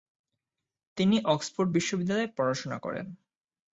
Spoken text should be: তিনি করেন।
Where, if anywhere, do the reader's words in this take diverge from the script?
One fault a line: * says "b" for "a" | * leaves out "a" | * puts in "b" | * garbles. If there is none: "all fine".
* puts in "অক্সফোর্ড বিশ্ববিদ্যালয়ে পড়াশোনা"